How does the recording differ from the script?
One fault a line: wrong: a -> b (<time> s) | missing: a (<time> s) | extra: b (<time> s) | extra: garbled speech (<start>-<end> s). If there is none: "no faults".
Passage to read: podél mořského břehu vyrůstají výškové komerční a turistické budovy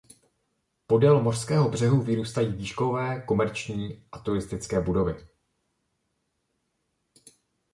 no faults